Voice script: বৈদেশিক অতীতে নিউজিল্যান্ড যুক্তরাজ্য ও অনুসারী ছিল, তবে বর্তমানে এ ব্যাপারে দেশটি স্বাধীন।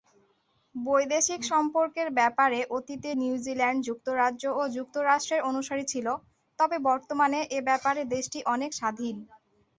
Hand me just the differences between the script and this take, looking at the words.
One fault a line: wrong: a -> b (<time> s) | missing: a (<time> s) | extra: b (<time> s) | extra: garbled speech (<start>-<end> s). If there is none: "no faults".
extra: সম্পর্কের ব্যাপারে (1.5 s)
extra: যুক্তরাষ্ট্রের (4.8 s)
extra: অনেক (8.5 s)